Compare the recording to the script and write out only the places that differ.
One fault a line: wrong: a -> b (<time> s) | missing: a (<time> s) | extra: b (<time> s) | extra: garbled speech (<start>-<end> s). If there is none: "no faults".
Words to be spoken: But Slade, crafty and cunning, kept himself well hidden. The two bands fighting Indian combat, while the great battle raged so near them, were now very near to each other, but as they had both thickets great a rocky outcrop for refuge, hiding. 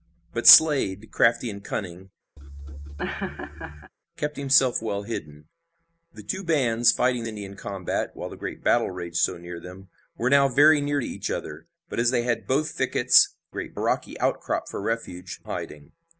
no faults